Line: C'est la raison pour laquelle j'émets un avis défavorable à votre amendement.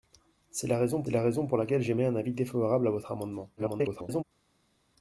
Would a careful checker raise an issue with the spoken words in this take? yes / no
yes